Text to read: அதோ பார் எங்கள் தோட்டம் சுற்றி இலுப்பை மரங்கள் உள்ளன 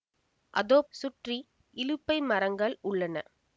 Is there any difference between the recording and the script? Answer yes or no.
yes